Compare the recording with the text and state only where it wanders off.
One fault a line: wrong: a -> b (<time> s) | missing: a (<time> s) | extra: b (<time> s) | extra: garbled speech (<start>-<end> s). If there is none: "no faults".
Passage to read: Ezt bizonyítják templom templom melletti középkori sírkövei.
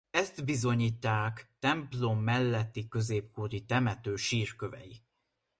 missing: templom (2.2 s)
extra: temető (3.6 s)